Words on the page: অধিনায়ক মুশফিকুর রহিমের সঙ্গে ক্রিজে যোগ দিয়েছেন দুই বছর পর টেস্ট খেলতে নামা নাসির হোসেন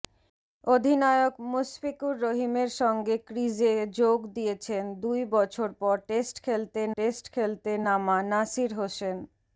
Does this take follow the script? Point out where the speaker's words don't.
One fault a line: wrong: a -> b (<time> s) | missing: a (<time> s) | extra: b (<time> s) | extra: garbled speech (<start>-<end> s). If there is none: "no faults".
extra: টেস্ট খেলতে (7.0 s)